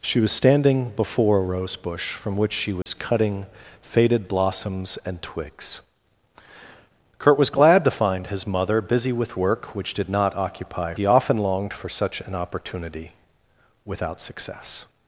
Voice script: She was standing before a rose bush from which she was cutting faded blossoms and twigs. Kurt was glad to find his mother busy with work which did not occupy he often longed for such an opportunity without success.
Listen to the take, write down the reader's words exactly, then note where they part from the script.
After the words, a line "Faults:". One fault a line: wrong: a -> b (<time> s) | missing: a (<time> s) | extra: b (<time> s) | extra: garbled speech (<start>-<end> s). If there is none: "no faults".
She was standing before a rose bush from which she was cutting faded blossoms and twigs. Kurt was glad to find his mother busy with work which did not occupy he often longed for such an opportunity without success.
Faults:
no faults